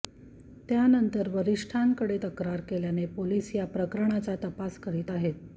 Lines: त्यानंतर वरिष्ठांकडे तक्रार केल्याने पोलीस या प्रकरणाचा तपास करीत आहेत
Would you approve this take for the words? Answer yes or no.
yes